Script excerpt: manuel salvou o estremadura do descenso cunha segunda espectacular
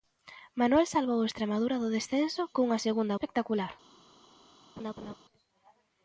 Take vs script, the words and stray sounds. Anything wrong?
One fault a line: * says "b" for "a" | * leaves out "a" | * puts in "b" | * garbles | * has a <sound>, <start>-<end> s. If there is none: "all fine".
* has a laugh, 4.8-5.2 s